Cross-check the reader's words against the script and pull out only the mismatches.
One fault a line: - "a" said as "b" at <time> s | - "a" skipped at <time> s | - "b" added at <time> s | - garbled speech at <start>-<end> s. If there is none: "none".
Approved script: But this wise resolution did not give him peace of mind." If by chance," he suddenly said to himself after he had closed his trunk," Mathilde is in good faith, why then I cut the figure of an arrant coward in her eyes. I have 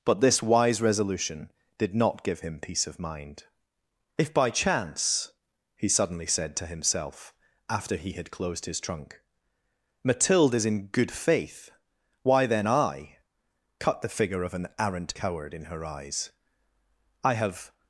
none